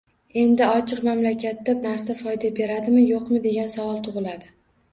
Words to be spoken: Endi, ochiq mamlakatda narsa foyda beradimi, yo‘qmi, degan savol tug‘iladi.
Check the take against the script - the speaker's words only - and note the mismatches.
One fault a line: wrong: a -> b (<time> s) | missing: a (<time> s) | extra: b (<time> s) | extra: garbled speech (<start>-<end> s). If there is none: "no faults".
no faults